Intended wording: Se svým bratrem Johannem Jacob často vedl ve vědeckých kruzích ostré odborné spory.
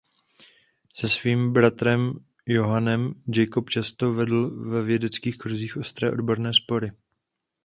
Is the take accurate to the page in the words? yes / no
yes